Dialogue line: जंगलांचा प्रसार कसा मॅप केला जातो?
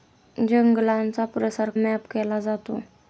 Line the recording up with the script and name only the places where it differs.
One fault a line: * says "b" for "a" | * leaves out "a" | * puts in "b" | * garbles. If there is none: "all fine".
* leaves out "कसा"